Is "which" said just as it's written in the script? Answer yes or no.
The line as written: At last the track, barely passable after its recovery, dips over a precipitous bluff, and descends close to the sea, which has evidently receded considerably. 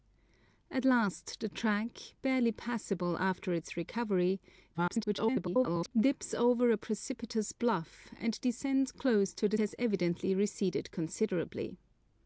no